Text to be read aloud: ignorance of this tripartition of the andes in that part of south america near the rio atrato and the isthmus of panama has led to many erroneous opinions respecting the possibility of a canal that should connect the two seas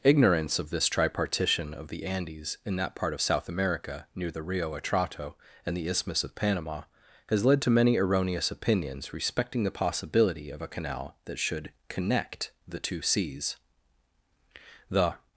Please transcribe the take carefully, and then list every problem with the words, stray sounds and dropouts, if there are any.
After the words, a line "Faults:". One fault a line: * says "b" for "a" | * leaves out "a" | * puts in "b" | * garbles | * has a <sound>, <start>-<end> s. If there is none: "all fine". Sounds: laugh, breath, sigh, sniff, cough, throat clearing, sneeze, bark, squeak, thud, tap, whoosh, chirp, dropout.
ignorance of this tripartition of the andes in that part of south america near the rio atrato and the isthmus of panama has led to many erroneous opinions respecting the possibility of a canal that should connect the two seas the
Faults:
* puts in "the"